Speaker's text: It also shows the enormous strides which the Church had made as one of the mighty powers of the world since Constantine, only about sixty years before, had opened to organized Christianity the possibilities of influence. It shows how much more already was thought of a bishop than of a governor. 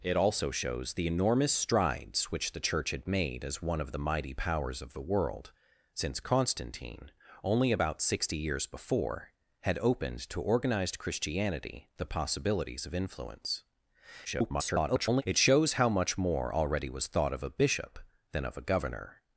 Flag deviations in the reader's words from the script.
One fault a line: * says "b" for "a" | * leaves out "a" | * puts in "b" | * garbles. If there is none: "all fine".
* garbles